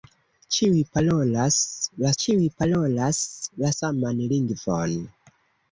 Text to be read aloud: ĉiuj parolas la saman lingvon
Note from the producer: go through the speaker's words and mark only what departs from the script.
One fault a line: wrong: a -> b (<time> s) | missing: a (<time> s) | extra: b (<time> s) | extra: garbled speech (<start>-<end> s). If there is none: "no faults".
extra: ĉiuj parolas la (2.2 s)